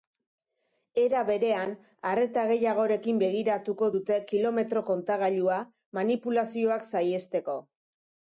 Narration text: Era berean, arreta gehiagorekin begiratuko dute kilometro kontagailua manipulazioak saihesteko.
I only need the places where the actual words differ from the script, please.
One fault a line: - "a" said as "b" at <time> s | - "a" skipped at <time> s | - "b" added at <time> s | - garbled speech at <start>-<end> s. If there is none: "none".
none